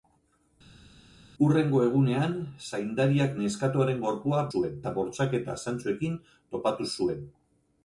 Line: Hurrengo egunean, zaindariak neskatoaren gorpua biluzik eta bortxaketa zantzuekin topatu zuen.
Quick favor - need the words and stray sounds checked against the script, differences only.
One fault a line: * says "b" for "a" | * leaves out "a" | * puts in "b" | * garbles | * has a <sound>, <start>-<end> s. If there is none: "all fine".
* says "zuen" for "biluzik"